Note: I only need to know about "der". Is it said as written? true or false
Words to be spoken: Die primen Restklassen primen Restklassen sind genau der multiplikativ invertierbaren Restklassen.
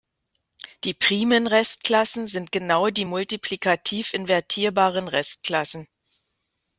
false